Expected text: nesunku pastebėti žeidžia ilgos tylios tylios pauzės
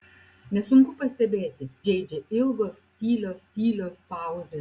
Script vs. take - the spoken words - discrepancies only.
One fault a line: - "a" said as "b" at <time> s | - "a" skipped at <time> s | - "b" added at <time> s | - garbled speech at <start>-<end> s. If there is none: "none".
none